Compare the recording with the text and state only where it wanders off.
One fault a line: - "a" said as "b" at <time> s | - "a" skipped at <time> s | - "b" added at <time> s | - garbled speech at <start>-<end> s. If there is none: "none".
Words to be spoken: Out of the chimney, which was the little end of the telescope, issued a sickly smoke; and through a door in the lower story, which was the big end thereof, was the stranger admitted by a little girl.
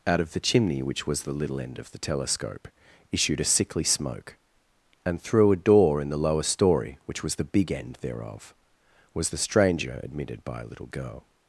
none